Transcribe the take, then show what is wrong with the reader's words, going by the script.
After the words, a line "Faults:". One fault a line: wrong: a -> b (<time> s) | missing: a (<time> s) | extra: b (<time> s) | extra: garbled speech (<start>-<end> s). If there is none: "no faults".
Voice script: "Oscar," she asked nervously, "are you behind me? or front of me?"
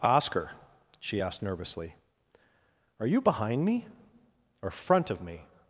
"Oscar," she asked nervously, "are you behind me? or front of me?"
Faults:
no faults